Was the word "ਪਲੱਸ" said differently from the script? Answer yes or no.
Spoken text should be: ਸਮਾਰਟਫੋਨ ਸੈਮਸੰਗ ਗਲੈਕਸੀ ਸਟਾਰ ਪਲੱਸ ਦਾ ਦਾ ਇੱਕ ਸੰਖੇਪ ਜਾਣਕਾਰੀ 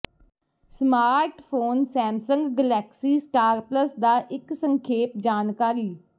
no